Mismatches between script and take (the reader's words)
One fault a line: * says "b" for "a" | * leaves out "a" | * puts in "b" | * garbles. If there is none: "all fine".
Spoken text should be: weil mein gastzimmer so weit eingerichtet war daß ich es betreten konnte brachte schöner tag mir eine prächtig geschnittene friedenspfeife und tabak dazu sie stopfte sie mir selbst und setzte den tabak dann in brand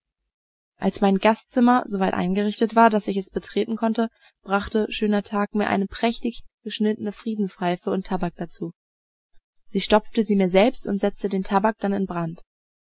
* says "als" for "weil"